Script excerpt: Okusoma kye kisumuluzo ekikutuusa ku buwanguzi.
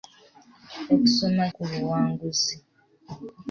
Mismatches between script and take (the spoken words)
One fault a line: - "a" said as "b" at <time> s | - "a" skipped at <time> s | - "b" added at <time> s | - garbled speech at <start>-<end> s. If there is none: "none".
- "kye kisumuluzo ekikutuusa" skipped at 1.4 s